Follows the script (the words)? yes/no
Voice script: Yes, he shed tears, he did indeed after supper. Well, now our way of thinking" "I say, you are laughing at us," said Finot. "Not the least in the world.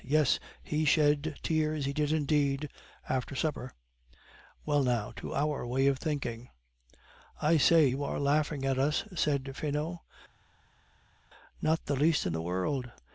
no